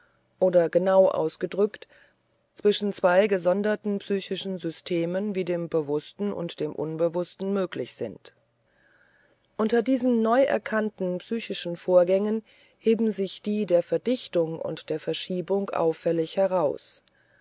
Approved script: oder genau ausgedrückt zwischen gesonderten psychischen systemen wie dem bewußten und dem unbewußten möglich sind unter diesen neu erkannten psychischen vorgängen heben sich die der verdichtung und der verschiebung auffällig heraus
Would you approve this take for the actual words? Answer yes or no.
no